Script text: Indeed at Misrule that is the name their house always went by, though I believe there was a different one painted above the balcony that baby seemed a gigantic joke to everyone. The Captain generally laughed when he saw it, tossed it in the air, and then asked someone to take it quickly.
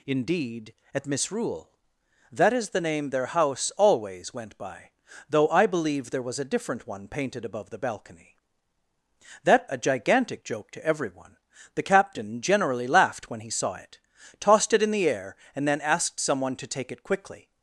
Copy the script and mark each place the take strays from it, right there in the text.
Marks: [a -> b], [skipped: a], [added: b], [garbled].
Indeed at Misrule that is the name their house always went by, though I believe there was a different one painted above the balcony that [skipped: baby seemed] a gigantic joke to everyone. The Captain generally laughed when he saw it, tossed it in the air, and then asked someone to take it quickly.